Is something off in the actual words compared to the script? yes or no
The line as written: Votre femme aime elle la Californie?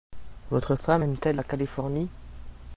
yes